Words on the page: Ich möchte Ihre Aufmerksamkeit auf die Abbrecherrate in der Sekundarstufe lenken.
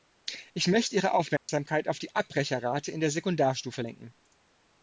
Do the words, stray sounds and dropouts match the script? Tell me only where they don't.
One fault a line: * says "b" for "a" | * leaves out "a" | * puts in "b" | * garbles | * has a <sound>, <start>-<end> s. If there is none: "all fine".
* has a dropout, 1.4-1.5 s